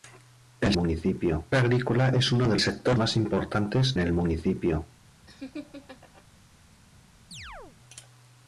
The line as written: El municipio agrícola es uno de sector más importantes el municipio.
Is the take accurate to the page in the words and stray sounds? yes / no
no